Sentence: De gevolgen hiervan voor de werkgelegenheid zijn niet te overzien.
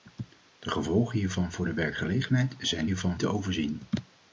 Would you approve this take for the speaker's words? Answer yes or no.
no